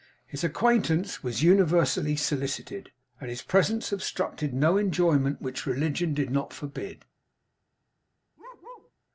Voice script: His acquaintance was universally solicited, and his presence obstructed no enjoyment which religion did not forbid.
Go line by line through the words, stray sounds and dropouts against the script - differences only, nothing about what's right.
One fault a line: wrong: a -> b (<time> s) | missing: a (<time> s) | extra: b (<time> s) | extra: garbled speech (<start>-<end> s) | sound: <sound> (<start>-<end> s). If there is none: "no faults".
sound: bark (8.4-8.9 s)